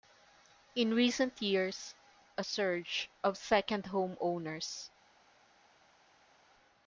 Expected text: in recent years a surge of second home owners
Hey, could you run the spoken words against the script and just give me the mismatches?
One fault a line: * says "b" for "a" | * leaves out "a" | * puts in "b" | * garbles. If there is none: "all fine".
all fine